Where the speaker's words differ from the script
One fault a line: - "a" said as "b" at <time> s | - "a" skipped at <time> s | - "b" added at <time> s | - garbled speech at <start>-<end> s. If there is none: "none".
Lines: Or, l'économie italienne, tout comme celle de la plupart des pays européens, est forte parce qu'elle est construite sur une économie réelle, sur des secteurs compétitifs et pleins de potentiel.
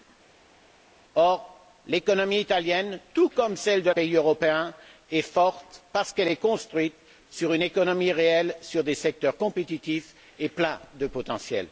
- "la plupart des" skipped at 3.9 s